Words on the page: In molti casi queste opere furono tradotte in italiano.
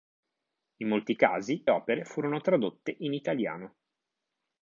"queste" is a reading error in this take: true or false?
true